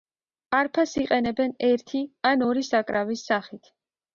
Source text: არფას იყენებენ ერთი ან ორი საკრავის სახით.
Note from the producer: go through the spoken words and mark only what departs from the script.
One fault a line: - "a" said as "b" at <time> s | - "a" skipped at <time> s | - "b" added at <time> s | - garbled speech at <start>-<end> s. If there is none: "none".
none